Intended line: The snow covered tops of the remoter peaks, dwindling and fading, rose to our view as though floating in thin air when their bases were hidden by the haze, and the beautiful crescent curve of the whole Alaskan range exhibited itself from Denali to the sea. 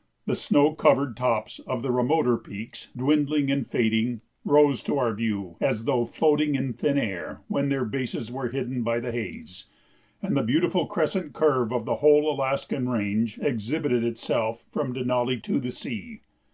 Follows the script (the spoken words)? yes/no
yes